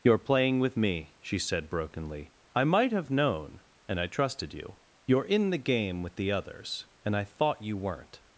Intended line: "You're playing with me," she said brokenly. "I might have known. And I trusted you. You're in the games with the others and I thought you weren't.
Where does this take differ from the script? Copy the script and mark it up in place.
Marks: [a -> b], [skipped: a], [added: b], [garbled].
"You're playing with me," she said brokenly. "I might have known. And I trusted you. You're in the [games -> game] with the others and I thought you weren't.